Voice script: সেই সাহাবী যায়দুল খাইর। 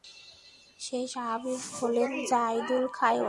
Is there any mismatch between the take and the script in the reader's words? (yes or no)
yes